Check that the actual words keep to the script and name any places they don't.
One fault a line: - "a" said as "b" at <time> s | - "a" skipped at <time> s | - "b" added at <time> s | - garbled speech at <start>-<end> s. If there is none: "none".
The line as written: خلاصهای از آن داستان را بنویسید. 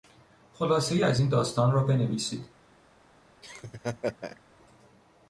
- "آن" said as "این" at 1.2 s